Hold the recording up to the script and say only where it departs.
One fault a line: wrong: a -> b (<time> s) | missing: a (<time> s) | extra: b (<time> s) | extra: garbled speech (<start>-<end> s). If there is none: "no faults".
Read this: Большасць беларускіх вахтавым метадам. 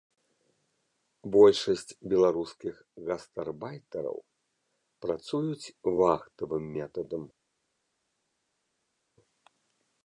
extra: гастарбайтараў працуюць (3.1 s)